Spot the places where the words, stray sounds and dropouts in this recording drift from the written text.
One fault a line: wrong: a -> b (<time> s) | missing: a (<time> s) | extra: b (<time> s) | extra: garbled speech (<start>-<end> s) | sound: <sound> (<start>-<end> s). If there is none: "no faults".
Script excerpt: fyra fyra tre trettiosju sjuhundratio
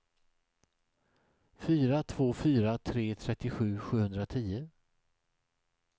extra: två (2.0 s)